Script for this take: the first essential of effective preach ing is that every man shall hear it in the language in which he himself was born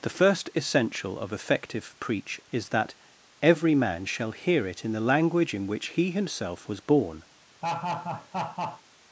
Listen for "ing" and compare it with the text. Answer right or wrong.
wrong